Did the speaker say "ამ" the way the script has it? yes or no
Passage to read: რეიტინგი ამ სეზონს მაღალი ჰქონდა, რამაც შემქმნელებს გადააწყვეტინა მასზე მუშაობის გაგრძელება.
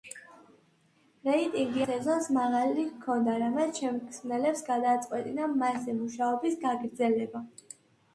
no